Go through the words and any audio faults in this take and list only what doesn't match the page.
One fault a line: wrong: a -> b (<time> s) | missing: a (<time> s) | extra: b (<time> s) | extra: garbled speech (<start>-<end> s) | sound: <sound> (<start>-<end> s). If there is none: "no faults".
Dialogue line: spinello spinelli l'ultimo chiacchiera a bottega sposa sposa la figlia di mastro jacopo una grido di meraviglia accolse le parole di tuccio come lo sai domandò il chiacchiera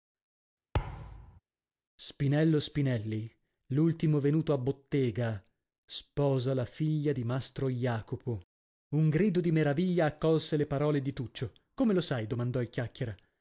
sound: thud (0.7-1.4 s)
wrong: chiacchiera -> venuto (4.2 s)
missing: sposa (6.5 s)
wrong: una -> un (9.0 s)